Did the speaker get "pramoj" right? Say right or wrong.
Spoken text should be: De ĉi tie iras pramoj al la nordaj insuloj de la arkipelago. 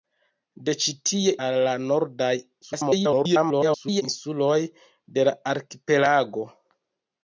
wrong